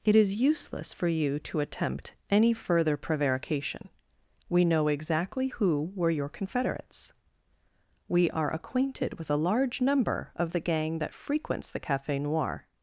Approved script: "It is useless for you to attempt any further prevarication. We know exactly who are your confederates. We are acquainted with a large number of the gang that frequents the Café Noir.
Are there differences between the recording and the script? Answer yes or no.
yes